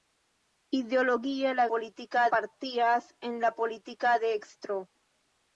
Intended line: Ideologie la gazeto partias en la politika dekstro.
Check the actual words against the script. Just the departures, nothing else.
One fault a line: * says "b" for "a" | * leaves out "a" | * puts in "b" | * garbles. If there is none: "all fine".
* says "politika" for "gazeto"